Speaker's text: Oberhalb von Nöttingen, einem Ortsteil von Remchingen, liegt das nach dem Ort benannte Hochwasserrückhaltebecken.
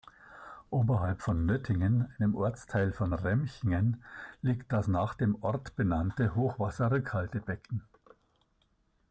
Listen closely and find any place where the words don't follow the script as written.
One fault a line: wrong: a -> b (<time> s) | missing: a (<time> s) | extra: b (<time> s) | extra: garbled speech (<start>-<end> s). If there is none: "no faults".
no faults